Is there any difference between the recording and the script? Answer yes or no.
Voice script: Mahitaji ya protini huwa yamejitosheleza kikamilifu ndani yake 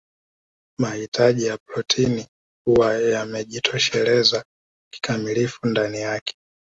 no